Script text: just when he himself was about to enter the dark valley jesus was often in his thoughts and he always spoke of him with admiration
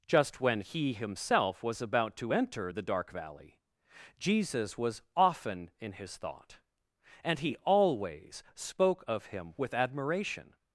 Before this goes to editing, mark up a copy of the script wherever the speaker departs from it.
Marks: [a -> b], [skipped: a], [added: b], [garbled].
just when he himself was about to enter the dark valley jesus was often in his [thoughts -> thought] and he always spoke of him with admiration